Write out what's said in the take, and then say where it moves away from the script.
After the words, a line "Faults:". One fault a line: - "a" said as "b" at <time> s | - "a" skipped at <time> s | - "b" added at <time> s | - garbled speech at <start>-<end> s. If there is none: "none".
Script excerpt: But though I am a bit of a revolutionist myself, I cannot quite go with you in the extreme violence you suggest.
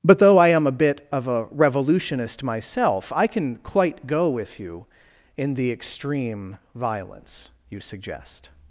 But though I am a bit of a revolutionist myself, I can quite go with you in the extreme violence you suggest.
Faults:
- "cannot" said as "can" at 3.3 s